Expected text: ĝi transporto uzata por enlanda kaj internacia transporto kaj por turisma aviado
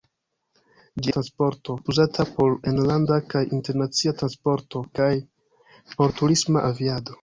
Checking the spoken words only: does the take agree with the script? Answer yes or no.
yes